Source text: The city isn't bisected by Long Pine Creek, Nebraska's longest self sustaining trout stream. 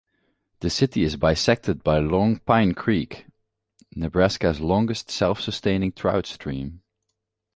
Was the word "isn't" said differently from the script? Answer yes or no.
yes